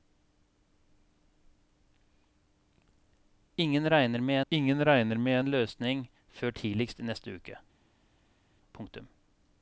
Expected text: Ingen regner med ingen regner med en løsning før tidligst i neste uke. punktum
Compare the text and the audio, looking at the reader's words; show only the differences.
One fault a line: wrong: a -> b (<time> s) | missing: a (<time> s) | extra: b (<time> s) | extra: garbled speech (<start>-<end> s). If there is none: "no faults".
no faults